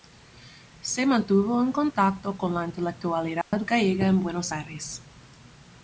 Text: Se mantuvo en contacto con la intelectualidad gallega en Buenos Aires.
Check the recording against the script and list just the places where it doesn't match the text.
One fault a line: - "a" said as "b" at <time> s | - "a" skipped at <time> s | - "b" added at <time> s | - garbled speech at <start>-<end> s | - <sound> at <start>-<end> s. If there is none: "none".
- dropout at 3.4-3.5 s